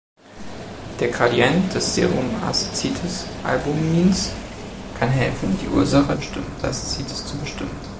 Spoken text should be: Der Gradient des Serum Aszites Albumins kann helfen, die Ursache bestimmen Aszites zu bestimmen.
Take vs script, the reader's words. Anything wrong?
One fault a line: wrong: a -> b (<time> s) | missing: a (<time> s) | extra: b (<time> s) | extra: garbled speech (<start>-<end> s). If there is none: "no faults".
no faults